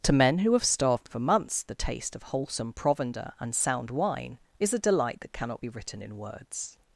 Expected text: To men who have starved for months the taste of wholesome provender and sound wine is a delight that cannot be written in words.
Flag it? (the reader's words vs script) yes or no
no